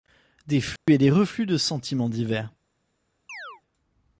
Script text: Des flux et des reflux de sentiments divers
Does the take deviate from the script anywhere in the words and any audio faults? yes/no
yes